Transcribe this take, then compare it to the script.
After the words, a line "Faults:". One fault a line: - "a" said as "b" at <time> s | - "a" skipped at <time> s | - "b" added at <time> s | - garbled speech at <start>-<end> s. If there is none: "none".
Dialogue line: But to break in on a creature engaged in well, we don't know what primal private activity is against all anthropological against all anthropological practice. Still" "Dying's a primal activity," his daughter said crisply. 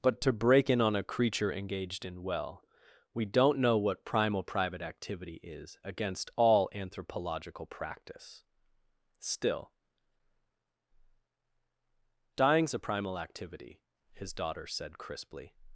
But to break in on a creature engaged in well, we don't know what primal private activity is against all anthropological practice. Still" "Dying's a primal activity," his daughter said crisply.
Faults:
- "against all anthropological" skipped at 7.7 s